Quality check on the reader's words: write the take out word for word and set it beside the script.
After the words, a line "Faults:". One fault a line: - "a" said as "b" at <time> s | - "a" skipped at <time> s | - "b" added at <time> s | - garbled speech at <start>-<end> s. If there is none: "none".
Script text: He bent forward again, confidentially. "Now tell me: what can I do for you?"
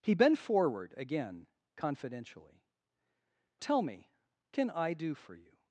He bent forward again, confidentially. "Tell me: can I do for you?"
Faults:
- "Now" skipped at 2.6 s
- "what" skipped at 4.1 s